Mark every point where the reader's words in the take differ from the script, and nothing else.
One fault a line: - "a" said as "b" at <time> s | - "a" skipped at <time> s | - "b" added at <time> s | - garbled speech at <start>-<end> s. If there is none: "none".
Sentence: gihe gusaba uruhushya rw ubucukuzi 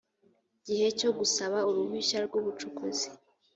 - "cyo" added at 1.0 s